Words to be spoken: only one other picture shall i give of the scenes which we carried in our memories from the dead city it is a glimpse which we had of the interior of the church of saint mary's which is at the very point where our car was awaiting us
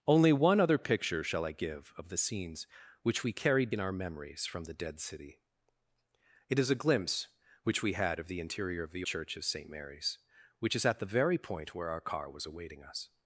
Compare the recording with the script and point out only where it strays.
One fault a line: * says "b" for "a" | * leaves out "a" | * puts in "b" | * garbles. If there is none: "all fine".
all fine